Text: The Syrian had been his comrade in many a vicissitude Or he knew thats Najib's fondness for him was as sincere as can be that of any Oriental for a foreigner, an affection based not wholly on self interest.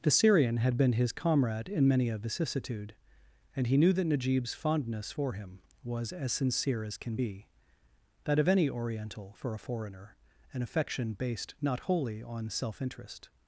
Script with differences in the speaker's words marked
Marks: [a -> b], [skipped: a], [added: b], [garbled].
The Syrian had been his comrade in many a vicissitude [Or -> And] he knew [thats -> that] Najib's fondness for him was as sincere as can be that of any Oriental for a foreigner, an affection based not wholly on self interest.